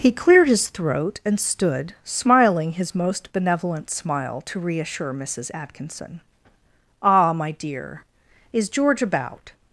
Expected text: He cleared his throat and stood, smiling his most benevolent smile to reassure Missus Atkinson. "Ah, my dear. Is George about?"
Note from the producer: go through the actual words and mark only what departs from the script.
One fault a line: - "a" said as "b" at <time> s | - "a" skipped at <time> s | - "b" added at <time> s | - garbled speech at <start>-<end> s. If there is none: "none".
none